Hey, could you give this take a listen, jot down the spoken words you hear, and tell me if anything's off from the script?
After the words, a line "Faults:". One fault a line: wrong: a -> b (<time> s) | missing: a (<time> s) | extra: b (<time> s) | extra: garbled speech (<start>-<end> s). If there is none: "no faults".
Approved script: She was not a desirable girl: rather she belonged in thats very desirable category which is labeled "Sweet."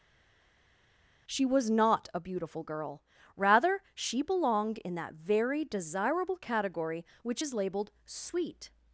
She was not a beautiful girl: rather she belonged in that very desirable category which is labeled "Sweet."
Faults:
wrong: desirable -> beautiful (2.2 s)
wrong: thats -> that (4.9 s)